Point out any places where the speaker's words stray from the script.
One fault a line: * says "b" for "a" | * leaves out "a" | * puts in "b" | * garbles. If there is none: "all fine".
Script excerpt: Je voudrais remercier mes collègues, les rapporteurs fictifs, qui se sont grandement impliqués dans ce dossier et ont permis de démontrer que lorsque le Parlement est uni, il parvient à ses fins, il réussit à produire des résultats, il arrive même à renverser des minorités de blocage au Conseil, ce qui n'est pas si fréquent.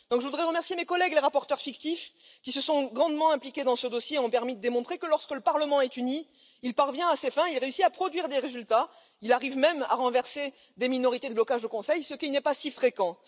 all fine